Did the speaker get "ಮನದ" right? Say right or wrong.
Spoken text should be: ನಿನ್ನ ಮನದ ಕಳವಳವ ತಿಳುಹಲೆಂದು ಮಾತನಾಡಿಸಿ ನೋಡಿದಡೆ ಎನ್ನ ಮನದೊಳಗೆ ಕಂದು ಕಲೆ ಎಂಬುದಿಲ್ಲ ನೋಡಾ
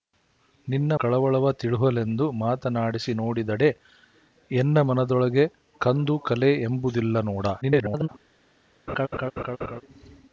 wrong